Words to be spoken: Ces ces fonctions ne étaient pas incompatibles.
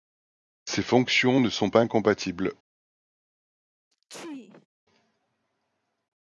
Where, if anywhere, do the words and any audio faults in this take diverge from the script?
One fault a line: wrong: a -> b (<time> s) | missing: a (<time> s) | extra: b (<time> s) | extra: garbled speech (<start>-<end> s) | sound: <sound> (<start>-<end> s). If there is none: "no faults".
missing: ces (0.8 s)
wrong: étaient -> sont (1.5 s)
sound: sneeze (3.9-4.7 s)